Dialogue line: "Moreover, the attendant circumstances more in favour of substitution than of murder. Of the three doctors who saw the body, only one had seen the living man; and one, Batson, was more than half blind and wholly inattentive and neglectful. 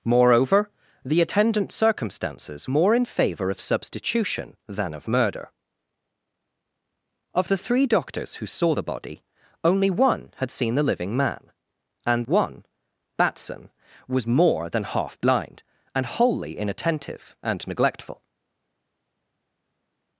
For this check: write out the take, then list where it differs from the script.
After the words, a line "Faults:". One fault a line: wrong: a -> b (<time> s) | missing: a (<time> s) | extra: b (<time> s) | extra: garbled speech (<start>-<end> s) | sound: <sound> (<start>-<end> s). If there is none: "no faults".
"Moreover, the attendant circumstances more in favour of substitution than of murder. Of the three doctors who saw the body, only one had seen the living man; and one, Batson, was more than half blind and wholly inattentive and neglectful.
Faults:
no faults